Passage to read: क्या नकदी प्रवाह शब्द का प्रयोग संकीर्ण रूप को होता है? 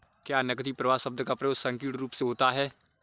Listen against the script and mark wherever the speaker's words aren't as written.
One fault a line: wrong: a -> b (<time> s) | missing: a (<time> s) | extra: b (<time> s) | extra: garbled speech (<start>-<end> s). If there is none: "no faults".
wrong: को -> से (2.1 s)